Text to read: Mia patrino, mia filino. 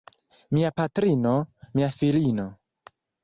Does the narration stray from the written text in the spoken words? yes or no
no